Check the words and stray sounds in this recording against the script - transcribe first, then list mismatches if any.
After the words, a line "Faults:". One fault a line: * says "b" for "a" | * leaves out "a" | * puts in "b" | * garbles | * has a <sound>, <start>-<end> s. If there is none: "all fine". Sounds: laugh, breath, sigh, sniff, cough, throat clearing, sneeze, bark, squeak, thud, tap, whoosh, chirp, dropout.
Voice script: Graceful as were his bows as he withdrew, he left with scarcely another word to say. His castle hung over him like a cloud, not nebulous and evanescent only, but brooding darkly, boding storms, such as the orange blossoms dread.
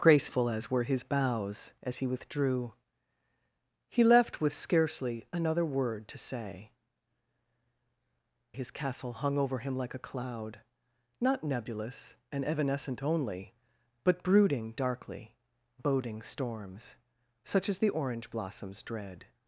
Graceful as were his bows as he withdrew, he left with scarcely another word to say. His castle hung over him like a cloud, not nebulous and evanescent only, but brooding darkly, boding storms, such as the orange blossoms dread.
Faults:
all fine